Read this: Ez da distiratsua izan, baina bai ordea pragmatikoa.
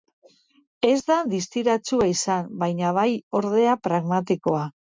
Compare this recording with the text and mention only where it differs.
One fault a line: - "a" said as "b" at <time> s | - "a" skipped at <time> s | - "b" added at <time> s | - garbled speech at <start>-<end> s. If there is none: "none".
none